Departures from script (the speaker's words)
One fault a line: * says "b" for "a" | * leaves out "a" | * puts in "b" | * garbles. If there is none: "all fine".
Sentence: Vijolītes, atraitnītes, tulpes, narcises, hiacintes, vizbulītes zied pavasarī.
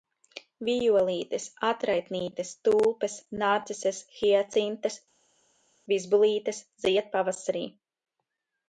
all fine